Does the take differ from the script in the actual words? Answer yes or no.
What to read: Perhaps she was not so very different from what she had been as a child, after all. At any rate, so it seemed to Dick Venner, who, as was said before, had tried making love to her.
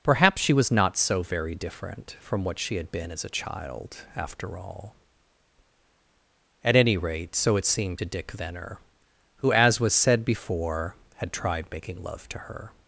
no